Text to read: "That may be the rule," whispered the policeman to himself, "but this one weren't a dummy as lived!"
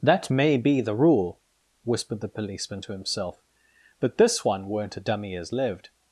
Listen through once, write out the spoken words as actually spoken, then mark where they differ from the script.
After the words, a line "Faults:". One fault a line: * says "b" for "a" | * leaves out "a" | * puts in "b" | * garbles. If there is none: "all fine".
"That may be the rule," whispered the policeman to himself, "but this one weren't a dummy as lived!"
Faults:
all fine